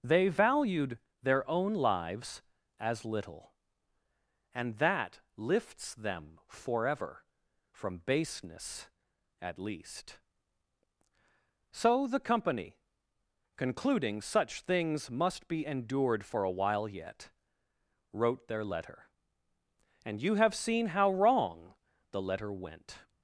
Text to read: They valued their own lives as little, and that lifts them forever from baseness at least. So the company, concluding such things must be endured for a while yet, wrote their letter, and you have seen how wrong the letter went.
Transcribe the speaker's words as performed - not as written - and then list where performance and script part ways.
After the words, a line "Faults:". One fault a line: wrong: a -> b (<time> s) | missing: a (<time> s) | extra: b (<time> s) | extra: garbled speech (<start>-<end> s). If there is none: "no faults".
They valued their own lives as little, and that lifts them forever from baseness at least. So the company, concluding such things must be endured for a while yet, wrote their letter, and you have seen how wrong the letter went.
Faults:
no faults